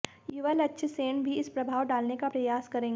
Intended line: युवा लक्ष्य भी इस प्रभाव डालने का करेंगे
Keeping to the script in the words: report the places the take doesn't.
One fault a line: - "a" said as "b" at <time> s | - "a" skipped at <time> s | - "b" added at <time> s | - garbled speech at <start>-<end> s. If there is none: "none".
- "सेन" added at 0.9 s
- "प्रयास" added at 2.2 s